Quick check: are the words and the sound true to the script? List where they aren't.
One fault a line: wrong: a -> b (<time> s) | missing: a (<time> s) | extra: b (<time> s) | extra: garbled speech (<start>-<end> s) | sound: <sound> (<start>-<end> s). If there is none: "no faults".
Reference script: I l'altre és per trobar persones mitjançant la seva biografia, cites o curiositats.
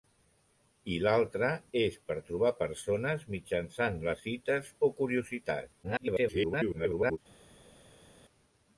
missing: seva biografia (4.2 s)
extra: garbled speech (5.8-7.2 s)